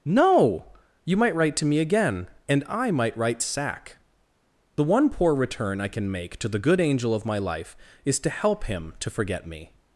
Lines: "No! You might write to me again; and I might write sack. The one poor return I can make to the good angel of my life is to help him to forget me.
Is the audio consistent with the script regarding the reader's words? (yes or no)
yes